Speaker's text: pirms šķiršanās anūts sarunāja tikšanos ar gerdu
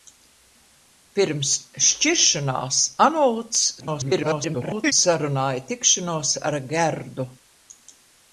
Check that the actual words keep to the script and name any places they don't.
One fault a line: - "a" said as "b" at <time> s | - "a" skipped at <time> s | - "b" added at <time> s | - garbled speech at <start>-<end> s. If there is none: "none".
- garbled speech at 3.8-4.9 s